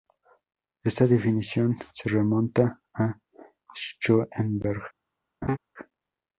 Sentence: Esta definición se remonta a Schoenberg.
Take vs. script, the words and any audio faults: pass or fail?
fail